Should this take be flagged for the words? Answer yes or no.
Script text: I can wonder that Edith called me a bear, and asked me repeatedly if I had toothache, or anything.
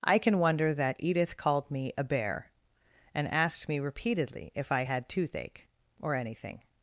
no